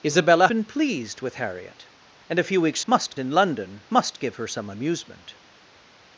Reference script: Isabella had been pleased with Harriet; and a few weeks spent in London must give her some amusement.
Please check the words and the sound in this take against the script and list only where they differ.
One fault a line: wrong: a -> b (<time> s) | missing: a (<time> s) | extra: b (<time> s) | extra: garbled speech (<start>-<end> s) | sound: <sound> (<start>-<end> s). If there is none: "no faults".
missing: had (0.5 s)
wrong: spent -> must (2.9 s)